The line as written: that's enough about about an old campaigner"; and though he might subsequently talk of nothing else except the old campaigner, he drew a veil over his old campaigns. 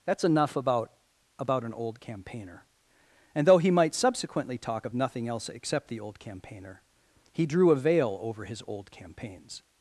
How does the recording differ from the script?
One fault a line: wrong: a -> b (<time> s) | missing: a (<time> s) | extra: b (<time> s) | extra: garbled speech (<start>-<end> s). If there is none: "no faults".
no faults